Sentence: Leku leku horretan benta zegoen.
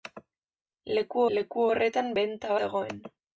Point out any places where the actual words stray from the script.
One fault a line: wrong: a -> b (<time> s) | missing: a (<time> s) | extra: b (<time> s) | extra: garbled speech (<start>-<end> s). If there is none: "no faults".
no faults